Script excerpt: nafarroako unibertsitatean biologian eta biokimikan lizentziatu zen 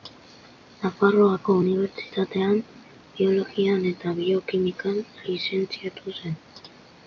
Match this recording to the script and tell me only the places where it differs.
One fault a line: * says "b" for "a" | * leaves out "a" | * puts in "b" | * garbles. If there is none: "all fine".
all fine